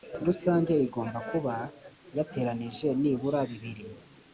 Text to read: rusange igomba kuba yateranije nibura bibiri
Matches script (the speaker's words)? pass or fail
pass